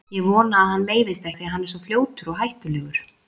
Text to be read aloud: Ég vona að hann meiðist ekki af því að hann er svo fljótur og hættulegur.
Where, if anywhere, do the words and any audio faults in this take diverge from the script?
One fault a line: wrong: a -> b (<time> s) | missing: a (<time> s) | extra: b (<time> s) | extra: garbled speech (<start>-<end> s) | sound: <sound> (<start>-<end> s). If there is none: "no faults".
missing: ekki (1.3 s)